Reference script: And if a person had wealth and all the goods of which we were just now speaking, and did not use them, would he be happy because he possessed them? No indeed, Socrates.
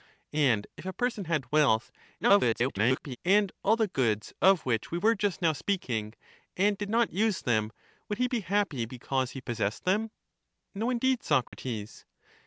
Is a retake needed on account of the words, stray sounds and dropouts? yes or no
yes